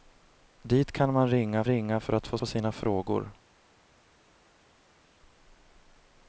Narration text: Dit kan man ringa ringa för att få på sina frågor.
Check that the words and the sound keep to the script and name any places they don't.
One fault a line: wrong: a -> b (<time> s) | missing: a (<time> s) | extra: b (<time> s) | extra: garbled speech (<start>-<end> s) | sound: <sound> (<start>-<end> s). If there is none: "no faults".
no faults